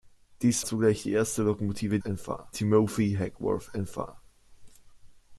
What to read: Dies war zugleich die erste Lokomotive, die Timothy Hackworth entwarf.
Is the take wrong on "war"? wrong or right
wrong